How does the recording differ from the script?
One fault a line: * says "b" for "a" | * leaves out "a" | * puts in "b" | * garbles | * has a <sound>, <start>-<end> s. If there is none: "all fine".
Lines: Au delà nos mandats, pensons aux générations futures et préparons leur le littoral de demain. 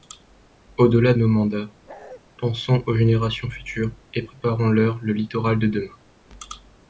* has a bark, 1.9-2.2 s